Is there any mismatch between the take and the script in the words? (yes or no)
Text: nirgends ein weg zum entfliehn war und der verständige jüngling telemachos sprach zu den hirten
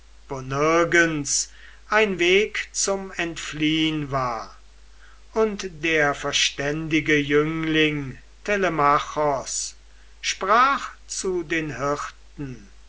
no